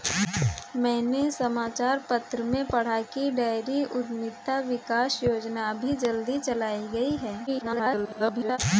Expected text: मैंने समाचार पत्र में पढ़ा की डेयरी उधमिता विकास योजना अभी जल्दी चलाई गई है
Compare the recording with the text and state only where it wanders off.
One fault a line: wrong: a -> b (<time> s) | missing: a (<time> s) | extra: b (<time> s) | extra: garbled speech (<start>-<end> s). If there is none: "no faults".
extra: garbled speech (7.5-8.6 s)